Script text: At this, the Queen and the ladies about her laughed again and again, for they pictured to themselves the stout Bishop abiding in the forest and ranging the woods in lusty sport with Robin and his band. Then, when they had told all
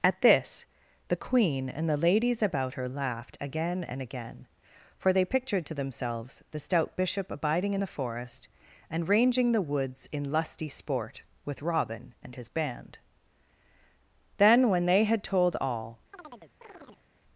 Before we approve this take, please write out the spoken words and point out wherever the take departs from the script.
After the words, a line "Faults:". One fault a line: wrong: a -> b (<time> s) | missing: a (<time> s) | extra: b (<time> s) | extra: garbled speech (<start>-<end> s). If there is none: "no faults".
At this, the Queen and the ladies about her laughed again and again, for they pictured to themselves the stout Bishop abiding in the forest and ranging the woods in lusty sport with Robin and his band. Then, when they had told all
Faults:
no faults